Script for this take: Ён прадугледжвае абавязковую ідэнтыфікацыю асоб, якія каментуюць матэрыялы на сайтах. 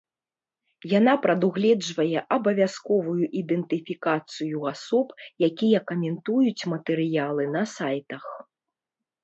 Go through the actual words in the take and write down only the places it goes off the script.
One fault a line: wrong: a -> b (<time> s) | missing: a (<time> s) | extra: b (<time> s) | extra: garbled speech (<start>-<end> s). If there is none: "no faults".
wrong: Ён -> Яна (1.0 s)